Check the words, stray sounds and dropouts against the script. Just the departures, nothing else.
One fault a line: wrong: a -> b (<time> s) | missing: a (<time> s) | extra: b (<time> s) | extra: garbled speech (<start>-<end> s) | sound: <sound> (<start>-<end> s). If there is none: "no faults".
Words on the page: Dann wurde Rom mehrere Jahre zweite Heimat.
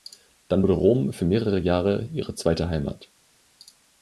extra: für (1.1 s)
extra: ihre (2.1 s)